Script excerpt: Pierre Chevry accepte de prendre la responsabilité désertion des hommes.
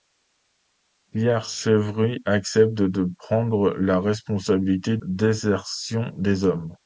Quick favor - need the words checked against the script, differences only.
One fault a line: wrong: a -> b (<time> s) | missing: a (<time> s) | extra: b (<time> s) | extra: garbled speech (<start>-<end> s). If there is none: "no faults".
no faults